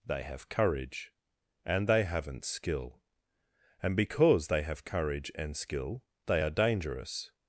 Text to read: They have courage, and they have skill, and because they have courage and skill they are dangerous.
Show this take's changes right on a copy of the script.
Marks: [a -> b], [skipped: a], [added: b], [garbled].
They have courage, and they [have -> haven't] skill, and because they have courage and skill they are dangerous.